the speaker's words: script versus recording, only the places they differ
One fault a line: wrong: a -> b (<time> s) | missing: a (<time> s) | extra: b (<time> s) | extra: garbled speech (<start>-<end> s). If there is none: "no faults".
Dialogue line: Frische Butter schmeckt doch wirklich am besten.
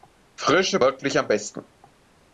missing: Butter schmeckt doch (0.8 s)